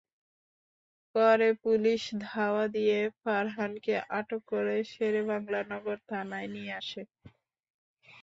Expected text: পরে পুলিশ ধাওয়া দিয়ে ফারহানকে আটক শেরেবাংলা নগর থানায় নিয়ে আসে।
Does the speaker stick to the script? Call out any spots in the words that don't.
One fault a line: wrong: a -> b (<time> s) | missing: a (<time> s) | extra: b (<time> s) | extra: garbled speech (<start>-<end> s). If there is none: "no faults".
extra: করে (4.5 s)